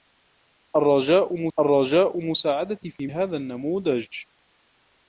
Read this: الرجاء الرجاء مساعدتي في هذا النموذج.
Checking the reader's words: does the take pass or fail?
pass